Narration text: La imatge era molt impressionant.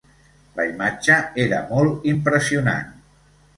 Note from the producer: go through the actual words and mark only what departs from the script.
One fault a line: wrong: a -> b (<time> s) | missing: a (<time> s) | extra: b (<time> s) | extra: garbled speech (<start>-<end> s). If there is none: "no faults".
no faults